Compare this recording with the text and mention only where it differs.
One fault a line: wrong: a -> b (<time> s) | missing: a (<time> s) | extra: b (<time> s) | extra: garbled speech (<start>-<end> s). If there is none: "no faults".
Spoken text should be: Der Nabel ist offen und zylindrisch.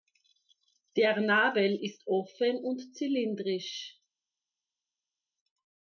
no faults